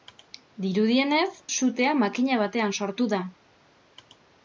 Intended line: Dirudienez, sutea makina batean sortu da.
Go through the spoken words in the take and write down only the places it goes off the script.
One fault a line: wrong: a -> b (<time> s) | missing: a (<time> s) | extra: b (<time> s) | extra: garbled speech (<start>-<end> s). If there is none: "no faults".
no faults